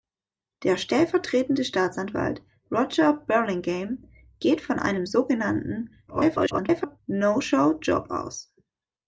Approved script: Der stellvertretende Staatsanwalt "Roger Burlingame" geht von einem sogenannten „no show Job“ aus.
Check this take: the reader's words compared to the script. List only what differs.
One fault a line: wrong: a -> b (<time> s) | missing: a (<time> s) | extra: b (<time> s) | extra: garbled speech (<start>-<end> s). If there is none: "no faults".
extra: garbled speech (6.1-7.0 s)